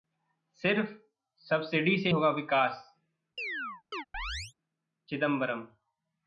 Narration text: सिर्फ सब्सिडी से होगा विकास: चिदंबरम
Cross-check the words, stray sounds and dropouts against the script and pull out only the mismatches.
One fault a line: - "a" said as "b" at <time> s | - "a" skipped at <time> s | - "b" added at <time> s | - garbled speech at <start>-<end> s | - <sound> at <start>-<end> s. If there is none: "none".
- chirp at 3.4-4.5 s